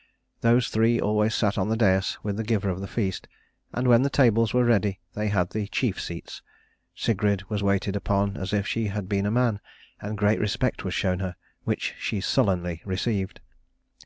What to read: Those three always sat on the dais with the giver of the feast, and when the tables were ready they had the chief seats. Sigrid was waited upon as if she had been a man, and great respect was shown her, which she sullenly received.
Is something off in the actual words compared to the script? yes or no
no